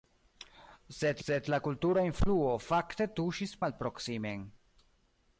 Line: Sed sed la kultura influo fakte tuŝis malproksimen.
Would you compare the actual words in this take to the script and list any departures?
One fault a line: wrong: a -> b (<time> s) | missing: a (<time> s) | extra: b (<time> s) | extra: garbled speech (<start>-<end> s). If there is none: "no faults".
no faults